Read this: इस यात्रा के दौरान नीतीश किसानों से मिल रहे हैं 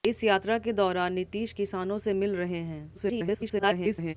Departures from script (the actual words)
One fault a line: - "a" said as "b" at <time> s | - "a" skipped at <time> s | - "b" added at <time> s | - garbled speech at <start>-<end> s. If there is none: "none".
- garbled speech at 2.9-4.1 s